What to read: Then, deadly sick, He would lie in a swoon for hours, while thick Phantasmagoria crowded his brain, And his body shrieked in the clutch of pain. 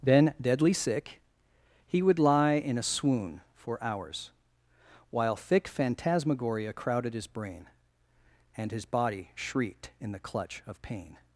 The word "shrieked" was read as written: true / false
true